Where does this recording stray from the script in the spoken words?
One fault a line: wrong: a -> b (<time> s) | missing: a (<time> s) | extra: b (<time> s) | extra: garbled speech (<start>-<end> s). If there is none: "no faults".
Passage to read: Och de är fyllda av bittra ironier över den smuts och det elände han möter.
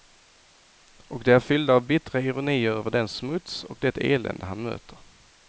no faults